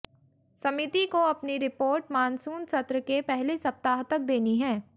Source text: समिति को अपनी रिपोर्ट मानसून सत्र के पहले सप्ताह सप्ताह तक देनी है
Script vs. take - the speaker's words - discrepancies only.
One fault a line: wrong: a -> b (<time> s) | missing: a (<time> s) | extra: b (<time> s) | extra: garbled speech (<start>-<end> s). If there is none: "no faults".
missing: सप्ताह (4.0 s)